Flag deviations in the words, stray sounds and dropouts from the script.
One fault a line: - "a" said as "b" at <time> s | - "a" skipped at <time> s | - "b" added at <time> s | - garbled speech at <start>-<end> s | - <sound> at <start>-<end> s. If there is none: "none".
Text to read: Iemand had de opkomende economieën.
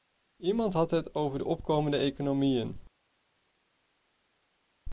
- "het over" added at 0.9 s